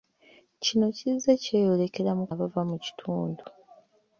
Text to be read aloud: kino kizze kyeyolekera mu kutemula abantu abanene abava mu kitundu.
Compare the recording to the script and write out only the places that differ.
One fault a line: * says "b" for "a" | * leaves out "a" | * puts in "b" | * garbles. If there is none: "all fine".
* leaves out "kutemula abantu abanene"